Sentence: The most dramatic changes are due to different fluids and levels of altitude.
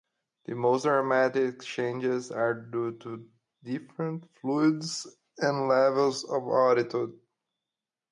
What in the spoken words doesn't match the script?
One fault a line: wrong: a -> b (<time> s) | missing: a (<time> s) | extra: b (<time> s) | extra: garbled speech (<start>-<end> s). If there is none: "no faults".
no faults